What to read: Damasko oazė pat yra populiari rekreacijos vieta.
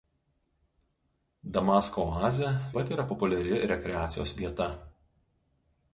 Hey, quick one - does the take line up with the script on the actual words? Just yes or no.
yes